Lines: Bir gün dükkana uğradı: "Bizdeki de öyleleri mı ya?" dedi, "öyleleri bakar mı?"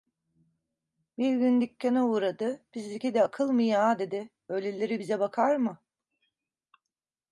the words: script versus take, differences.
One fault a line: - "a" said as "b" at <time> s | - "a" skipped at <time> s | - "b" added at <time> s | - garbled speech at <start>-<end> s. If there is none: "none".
- "öyleleri" said as "akıl" at 3.2 s
- "bize" added at 5.0 s